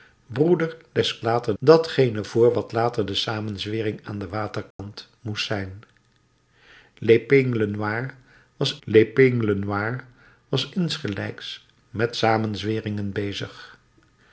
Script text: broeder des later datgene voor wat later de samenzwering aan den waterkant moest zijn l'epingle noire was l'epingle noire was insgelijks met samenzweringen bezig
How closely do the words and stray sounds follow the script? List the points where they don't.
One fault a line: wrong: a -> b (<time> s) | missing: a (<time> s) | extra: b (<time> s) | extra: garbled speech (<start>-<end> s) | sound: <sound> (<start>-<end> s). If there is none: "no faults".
sound: dropout (4.7-4.8 s)